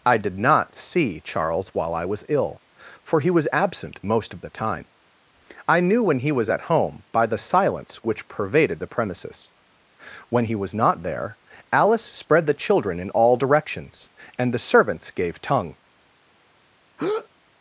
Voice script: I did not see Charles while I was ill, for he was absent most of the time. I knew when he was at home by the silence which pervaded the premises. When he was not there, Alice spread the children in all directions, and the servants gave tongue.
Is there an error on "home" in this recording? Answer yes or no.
no